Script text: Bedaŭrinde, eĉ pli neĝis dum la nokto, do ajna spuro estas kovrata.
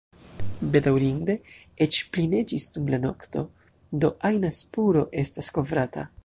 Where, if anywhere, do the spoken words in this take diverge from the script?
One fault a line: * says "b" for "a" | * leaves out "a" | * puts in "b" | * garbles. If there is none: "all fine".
all fine